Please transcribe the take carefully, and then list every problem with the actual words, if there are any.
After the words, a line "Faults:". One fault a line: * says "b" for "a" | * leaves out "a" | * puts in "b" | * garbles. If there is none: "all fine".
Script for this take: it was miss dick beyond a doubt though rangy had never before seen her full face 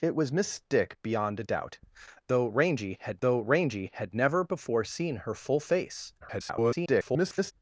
it was miss dick beyond a doubt though rangy had though rangy had never before seen her full face [garbled]
Faults:
* puts in "though rangy had"
* garbles